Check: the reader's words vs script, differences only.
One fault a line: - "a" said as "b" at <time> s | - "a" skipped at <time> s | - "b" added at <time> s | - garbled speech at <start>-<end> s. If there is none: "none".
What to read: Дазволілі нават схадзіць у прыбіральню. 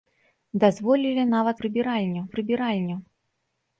- "схадзіць" said as "прыбіральню" at 1.6 s